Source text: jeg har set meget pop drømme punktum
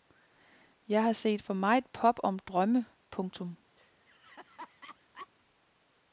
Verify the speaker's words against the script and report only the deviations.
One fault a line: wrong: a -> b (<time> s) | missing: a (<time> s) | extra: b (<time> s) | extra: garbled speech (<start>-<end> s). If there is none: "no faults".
extra: for (1.4 s)
extra: om (2.2 s)